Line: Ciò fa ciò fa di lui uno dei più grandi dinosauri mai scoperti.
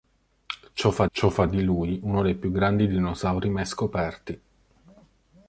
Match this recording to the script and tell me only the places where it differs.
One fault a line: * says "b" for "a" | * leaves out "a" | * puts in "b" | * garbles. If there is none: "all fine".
all fine